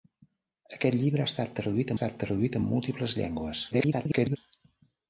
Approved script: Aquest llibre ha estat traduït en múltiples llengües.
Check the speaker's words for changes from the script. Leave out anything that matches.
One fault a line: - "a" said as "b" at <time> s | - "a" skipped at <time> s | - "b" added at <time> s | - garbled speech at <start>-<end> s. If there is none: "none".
- "estat traduït" added at 1.9 s
- garbled speech at 3.7-4.4 s